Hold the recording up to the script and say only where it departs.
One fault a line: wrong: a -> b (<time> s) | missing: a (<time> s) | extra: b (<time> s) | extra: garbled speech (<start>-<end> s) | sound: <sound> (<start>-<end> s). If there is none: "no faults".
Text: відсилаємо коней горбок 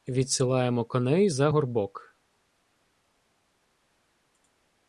extra: за (1.3 s)